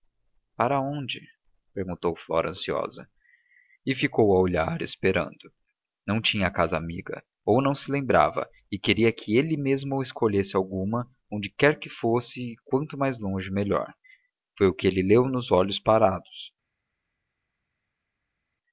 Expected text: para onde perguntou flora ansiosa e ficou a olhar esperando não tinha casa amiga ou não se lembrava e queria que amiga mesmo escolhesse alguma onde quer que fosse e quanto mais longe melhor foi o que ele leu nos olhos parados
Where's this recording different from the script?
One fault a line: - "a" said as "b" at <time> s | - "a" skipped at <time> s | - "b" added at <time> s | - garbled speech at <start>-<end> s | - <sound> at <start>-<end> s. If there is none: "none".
- "amiga" said as "ele" at 9.4 s